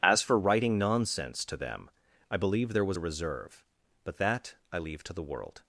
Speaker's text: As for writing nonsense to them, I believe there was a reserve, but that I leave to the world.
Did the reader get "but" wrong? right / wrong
right